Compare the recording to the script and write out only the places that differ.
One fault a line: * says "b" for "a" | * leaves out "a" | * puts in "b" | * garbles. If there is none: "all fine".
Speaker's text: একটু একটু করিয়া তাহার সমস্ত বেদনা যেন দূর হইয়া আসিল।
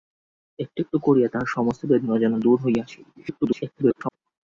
* garbles